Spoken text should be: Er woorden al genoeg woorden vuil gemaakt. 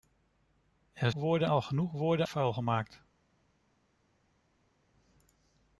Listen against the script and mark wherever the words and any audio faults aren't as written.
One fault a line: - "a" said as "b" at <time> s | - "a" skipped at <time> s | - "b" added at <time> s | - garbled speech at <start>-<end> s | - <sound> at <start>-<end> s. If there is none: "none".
none